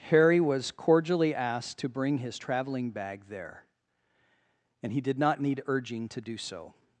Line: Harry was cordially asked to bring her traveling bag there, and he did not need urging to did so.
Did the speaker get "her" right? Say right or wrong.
wrong